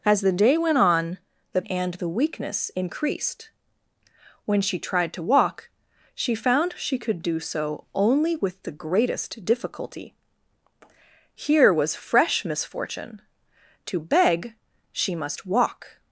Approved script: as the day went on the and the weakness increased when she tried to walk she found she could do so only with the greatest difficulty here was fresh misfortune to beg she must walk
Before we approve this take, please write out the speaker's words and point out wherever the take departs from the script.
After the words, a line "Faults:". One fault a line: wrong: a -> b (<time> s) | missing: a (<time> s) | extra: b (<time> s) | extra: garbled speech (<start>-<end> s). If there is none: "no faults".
as the day went on the and the weakness increased when she tried to walk she found she could do so only with the greatest difficulty here was fresh misfortune to beg she must walk
Faults:
no faults